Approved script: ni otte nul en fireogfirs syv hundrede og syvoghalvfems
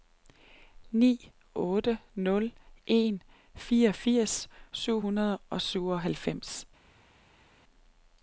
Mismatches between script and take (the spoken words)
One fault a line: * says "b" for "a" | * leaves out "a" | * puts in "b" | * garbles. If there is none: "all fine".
all fine